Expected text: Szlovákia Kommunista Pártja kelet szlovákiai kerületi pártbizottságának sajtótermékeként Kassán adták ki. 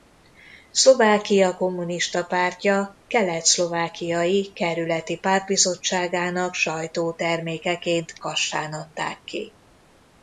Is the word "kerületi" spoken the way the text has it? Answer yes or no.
yes